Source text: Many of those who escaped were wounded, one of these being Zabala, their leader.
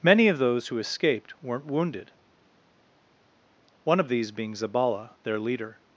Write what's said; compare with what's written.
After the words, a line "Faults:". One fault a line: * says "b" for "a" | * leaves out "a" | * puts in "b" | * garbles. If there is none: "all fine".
Many of those who escaped weren't wounded, one of these being Zabala, their leader.
Faults:
* says "weren't" for "were"